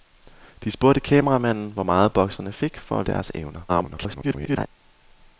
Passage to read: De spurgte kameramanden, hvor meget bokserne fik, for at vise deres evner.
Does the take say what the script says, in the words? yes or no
no